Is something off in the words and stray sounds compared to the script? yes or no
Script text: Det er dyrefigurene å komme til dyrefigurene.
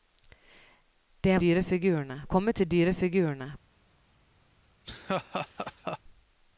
yes